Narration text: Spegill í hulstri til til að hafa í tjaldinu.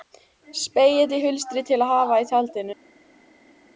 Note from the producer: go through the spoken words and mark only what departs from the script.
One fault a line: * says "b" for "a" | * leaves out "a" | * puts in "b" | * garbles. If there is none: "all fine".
* leaves out "til"